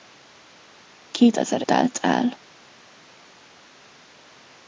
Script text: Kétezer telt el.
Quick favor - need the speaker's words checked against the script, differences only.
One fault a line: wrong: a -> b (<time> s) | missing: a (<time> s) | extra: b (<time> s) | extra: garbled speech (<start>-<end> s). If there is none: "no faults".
no faults